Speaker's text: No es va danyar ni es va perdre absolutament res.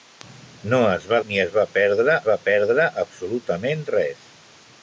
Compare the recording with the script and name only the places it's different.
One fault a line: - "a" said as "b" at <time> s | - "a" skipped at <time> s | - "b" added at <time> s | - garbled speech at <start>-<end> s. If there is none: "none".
- "danyar" skipped at 1.2 s
- "va perdre" added at 2.3 s